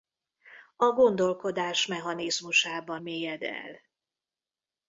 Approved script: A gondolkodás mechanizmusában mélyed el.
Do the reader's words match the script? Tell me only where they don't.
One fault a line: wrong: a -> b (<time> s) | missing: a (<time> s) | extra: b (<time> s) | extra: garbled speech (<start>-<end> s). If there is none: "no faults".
no faults